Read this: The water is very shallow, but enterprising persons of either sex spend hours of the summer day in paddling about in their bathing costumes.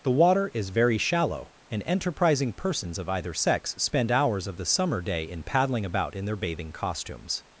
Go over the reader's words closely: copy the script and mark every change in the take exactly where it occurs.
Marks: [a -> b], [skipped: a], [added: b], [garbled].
The water is very shallow, [but -> and] enterprising persons of either sex spend hours of the summer day in paddling about in their bathing costumes.